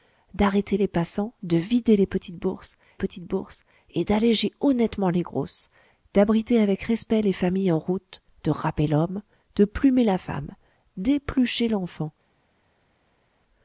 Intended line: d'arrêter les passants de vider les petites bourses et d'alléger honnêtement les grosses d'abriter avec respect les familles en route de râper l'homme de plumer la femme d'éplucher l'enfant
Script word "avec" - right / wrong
right